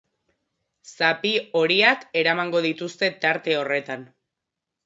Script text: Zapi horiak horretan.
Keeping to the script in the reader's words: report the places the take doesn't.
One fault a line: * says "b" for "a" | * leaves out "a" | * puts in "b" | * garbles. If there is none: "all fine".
* puts in "eramango dituzte tarte"